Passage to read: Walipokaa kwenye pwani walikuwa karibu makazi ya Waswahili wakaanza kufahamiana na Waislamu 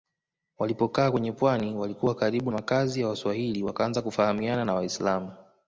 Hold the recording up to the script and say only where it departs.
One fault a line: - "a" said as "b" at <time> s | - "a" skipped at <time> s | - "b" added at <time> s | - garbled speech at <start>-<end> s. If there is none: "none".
none